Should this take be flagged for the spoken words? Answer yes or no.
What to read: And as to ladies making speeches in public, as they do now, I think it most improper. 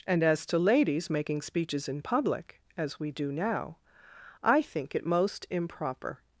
yes